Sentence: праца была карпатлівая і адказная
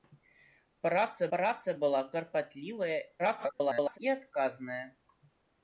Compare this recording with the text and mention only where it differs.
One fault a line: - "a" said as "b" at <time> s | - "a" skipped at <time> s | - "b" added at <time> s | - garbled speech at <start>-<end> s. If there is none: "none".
- "праца" added at 1.3 s
- garbled speech at 3.2-4.0 s